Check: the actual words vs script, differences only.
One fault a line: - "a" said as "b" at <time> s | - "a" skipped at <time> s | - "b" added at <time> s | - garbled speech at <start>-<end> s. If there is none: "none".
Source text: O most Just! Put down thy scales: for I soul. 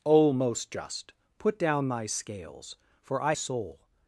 none